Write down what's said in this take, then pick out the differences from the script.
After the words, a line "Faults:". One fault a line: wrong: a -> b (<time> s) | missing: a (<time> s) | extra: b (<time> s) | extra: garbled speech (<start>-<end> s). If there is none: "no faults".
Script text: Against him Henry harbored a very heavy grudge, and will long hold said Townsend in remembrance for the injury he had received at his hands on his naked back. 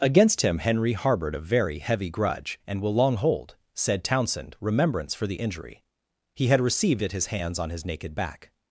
Against him Henry harbored a very heavy grudge, and will long hold said Townsend remembrance for the injury he had received at his hands on his naked back.
Faults:
missing: in (4.5 s)